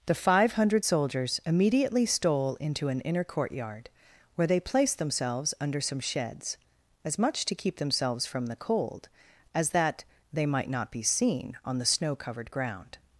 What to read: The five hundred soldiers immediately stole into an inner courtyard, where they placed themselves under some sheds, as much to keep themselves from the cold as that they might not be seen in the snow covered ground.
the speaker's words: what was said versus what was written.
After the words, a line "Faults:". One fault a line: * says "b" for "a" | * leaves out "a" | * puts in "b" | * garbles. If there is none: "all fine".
The five hundred soldiers immediately stole into an inner courtyard, where they placed themselves under some sheds, as much to keep themselves from the cold as that they might not be seen on the snow covered ground.
Faults:
* says "on" for "in"